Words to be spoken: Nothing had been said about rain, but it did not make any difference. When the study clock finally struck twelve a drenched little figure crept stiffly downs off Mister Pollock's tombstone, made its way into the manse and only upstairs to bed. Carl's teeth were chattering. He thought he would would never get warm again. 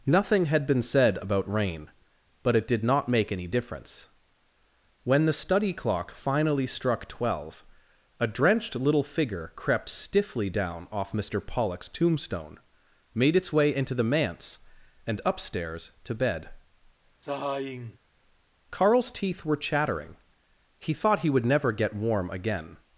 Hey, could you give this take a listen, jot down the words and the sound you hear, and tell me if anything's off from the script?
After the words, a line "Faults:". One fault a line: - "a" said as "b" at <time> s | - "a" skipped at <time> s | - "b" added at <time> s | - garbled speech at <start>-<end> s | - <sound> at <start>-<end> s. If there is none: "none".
Nothing had been said about rain, but it did not make any difference. When the study clock finally struck twelve a drenched little figure crept stiffly down off Mister Pollock's tombstone, made its way into the manse and upstairs to bed. Carl's teeth were chattering. He thought he would never get warm again.
Faults:
- "downs" said as "down" at 10.5 s
- "only" skipped at 15.2 s
- sigh at 17.2-18.0 s
- "would" skipped at 21.5 s